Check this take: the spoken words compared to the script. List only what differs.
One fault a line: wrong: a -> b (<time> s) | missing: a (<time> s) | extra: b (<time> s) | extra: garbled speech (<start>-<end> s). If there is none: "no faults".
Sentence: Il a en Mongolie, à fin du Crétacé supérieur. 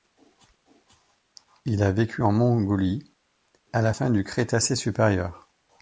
extra: vécu (1.9 s)
extra: la (3.8 s)